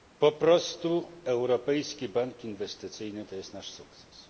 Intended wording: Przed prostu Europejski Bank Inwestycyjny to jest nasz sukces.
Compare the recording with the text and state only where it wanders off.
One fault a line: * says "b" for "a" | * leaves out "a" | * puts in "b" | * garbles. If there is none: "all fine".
* says "Po" for "Przed"